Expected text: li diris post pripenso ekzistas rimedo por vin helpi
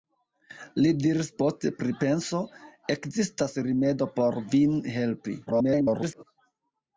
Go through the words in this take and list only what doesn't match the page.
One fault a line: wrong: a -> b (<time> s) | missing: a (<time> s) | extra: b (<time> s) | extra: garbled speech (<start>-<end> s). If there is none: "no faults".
extra: garbled speech (5.5-6.2 s)